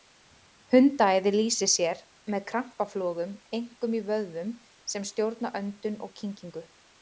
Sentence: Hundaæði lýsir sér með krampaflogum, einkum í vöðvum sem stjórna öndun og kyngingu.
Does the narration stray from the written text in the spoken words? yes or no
no